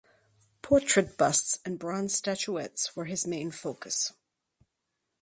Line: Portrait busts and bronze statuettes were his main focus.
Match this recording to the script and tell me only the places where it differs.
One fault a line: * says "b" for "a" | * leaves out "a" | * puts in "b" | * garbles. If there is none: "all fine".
all fine